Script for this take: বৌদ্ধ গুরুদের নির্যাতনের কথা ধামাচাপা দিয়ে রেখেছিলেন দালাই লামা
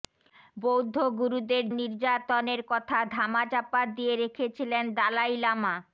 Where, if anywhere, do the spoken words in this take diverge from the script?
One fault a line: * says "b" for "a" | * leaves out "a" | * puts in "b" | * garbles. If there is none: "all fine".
all fine